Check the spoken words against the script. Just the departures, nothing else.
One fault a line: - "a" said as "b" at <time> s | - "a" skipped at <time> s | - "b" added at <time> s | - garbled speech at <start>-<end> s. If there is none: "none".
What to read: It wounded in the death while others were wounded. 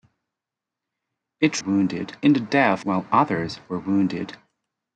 none